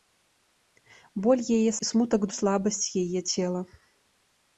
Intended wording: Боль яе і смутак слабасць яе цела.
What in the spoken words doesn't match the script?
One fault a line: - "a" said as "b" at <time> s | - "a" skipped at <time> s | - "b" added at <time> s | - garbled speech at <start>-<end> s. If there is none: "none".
none